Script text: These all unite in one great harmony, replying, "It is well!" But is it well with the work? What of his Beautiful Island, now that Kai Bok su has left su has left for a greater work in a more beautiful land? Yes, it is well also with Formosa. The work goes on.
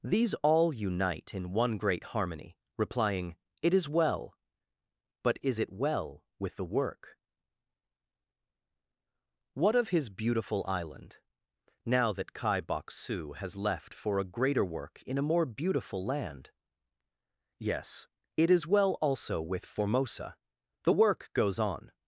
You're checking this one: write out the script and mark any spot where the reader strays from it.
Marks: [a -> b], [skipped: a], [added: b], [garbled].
These all unite in one great harmony, replying, "It is well!" But is it well with the work? What of his Beautiful Island, now that Kai Bok su has left [skipped: su has left] for a greater work in a more beautiful land? Yes, it is well also with Formosa. The work goes on.